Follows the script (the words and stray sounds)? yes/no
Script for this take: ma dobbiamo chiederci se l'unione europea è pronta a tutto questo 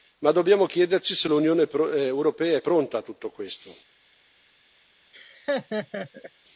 no